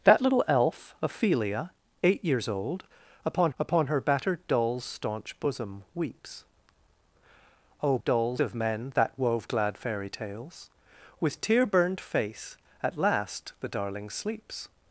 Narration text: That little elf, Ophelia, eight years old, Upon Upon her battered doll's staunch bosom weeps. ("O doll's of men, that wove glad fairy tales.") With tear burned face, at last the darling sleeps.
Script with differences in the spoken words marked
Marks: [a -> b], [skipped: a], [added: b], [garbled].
That little elf, Ophelia, eight years old, Upon Upon her battered doll's staunch bosom weeps. ("O doll's of men, that wove glad fairy tales.") With tear burned face, at last the darling sleeps.